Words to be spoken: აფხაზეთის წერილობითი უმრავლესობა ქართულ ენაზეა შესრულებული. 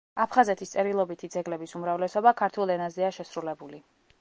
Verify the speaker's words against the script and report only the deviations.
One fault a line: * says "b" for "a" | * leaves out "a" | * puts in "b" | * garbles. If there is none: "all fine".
* puts in "ძეგლების"